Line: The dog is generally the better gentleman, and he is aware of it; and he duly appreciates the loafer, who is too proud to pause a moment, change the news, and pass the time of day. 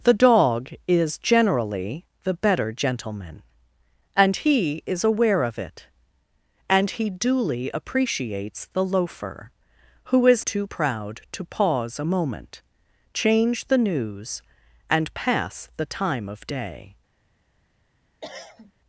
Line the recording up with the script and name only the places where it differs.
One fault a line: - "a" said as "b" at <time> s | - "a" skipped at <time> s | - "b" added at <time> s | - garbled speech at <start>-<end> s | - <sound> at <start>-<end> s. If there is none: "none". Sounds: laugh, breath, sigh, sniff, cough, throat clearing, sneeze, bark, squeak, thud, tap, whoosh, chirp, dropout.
- cough at 18.2-18.7 s